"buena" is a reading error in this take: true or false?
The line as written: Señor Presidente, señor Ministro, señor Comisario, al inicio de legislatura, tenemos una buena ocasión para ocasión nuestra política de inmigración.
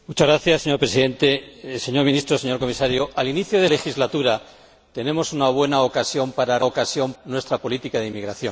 false